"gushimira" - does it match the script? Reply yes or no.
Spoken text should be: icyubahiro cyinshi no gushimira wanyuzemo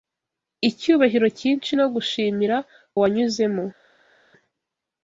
yes